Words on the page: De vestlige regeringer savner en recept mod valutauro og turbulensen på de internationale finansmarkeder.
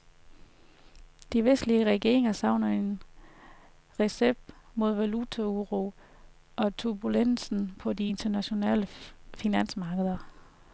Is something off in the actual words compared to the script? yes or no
no